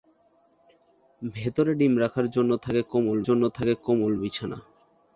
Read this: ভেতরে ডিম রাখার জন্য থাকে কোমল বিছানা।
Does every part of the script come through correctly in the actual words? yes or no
no